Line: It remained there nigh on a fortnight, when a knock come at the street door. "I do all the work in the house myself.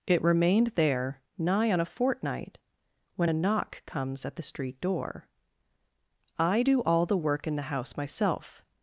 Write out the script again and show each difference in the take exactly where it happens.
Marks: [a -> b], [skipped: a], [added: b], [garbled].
It remained there nigh on a fortnight, when a knock [come -> comes] at the street door. "I do all the work in the house myself.